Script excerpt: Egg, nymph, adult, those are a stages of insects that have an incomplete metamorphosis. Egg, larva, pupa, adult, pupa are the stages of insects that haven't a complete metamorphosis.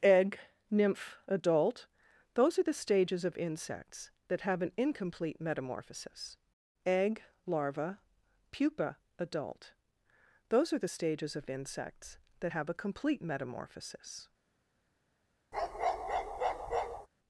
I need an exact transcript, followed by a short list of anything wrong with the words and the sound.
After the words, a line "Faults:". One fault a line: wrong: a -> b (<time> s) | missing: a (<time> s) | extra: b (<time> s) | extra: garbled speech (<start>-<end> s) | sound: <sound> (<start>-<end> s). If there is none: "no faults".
Egg, nymph, adult, those are the stages of insects that have an incomplete metamorphosis. Egg, larva, pupa, adult, those are the stages of insects that have a complete metamorphosis.
Faults:
wrong: a -> the (2.6 s)
wrong: pupa -> those (10.5 s)
wrong: haven't -> have (12.5 s)
sound: bark (15.5-17.1 s)